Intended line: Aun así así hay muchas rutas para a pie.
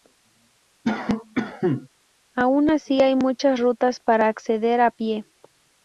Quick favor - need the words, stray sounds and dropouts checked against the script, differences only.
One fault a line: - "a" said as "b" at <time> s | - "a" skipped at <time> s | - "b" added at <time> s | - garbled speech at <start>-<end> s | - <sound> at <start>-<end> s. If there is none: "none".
- cough at 0.8-1.9 s
- "así" skipped at 3.0 s
- "acceder" added at 4.3 s